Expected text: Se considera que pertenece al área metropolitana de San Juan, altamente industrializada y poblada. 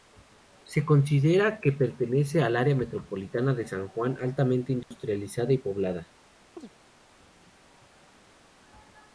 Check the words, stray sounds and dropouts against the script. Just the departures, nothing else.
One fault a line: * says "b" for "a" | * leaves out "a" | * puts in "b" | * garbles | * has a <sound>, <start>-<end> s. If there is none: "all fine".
* has a dropout, 4.8-4.9 s
* has a chirp, 6.6-6.7 s